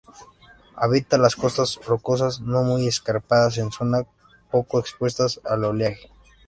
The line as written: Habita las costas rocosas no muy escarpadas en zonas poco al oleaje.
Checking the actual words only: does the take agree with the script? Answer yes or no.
no